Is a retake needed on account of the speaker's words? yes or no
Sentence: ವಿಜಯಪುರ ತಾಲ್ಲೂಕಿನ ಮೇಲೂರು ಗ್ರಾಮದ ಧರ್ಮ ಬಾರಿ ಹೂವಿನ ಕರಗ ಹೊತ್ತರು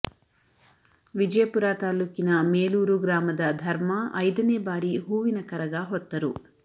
yes